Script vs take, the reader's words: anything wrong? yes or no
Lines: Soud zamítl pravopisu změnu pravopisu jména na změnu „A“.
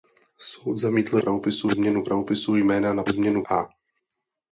no